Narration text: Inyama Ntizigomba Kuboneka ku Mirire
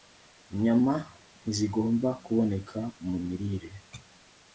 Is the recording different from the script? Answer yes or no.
yes